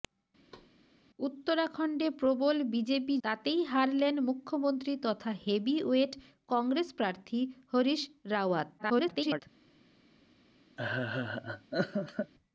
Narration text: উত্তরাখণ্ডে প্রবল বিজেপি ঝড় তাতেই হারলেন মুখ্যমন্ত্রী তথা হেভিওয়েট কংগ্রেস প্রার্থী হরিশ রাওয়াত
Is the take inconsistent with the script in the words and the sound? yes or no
yes